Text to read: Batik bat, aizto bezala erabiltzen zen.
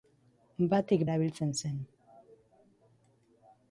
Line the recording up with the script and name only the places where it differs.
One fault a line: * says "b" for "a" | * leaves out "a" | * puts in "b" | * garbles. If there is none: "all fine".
* leaves out "bat aizto bezala"